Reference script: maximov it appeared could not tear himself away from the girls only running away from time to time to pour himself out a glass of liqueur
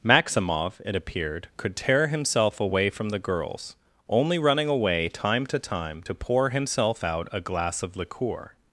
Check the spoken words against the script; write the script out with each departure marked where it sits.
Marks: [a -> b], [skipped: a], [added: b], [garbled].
maximov it appeared could [skipped: not] tear himself away from the girls only running away [skipped: from] time to time to pour himself out a glass of liqueur